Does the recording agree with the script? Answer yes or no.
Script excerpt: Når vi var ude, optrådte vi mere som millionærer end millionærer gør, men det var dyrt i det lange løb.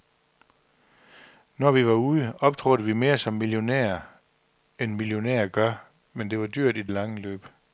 yes